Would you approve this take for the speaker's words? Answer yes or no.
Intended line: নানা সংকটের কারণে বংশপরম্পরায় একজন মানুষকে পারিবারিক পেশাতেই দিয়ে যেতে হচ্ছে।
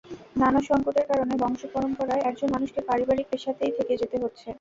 no